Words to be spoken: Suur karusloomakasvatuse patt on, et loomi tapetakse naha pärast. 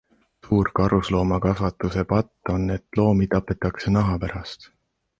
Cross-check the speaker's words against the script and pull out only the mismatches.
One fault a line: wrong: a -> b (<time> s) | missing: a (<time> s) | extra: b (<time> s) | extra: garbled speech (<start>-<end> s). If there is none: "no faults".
no faults